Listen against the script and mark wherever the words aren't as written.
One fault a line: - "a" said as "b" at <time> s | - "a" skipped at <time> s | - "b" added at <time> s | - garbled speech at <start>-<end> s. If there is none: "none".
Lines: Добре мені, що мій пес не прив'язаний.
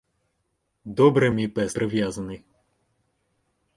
- "мені що" skipped at 1.3 s
- "не" skipped at 1.8 s